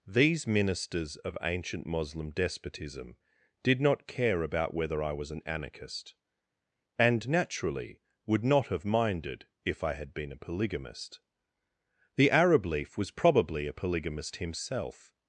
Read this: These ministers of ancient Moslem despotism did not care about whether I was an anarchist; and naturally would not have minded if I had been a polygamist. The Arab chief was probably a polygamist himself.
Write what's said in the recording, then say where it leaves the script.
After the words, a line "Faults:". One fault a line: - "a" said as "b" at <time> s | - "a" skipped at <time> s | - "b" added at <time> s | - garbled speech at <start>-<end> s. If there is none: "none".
These ministers of ancient Moslem despotism did not care about whether I was an anarchist; and naturally would not have minded if I had been a polygamist. The Arab leaf was probably a polygamist himself.
Faults:
- "chief" said as "leaf" at 12.7 s